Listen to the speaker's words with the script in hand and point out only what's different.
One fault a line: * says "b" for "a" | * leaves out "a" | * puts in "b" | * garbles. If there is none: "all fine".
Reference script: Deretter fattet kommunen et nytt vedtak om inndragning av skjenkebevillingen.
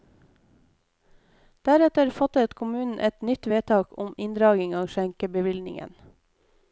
all fine